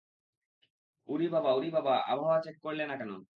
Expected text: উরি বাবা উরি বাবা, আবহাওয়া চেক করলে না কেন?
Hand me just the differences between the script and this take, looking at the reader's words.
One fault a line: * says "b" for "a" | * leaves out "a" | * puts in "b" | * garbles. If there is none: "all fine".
all fine